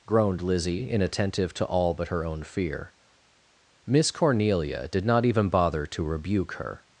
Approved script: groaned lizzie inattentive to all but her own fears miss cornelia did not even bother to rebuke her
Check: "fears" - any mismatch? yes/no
yes